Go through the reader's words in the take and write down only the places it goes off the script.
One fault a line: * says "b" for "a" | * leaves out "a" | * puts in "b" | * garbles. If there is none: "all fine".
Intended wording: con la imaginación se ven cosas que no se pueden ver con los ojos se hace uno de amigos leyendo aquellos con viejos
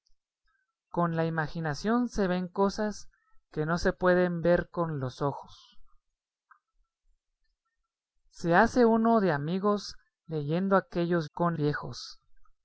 all fine